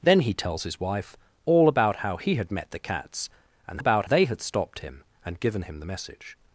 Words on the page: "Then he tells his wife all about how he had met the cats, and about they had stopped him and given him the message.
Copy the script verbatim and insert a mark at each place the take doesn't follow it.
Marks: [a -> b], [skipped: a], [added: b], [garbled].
"Then he tells his wife all about how he had met the cats, and about they had stopped him and given him the message.